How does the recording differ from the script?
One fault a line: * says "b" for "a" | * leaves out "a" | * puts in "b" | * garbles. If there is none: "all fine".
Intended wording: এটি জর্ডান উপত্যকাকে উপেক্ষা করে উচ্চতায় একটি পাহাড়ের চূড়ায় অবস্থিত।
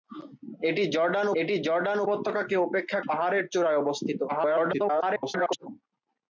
* puts in "এটি জর্ডান"
* leaves out "করে উচ্চতায় একটি"
* garbles